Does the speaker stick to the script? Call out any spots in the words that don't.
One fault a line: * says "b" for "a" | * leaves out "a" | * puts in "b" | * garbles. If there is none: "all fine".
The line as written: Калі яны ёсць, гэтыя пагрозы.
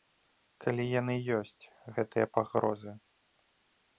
all fine